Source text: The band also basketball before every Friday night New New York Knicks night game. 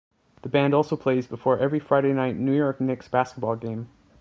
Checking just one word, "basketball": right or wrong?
wrong